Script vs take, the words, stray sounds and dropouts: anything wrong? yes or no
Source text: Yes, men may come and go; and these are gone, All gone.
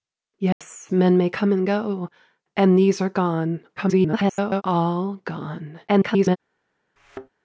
yes